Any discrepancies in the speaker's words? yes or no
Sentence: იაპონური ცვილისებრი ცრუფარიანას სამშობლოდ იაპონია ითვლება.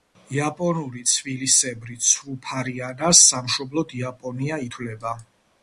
no